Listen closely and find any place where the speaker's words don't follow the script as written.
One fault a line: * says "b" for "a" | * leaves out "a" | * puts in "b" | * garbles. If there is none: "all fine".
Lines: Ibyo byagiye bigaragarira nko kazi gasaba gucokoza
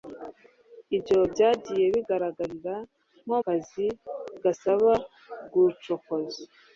all fine